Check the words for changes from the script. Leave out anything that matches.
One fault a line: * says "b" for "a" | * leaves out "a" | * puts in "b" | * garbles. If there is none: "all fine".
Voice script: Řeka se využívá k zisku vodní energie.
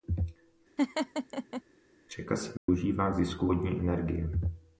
all fine